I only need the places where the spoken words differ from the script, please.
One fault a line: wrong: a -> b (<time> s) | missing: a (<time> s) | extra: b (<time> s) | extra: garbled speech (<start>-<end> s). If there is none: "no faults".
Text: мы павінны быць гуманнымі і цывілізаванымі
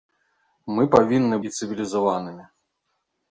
missing: быць гуманнымі (1.4 s)